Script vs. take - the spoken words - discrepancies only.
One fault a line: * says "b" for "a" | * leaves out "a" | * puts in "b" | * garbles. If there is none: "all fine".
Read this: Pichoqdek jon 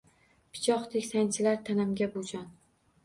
* puts in "sanchilar tanamga bu"